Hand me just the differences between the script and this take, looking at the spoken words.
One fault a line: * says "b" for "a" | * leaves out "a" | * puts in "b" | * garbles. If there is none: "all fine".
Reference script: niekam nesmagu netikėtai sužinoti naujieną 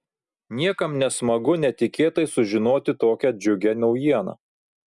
* puts in "tokią džiugią"